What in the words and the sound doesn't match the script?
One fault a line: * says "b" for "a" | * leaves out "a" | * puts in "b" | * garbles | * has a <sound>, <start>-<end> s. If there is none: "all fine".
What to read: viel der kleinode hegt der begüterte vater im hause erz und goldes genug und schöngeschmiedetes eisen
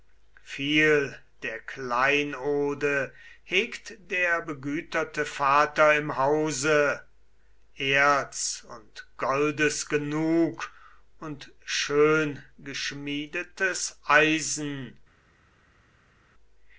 all fine